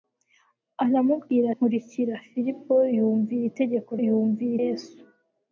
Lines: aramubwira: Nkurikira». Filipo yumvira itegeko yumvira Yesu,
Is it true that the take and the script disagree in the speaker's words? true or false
false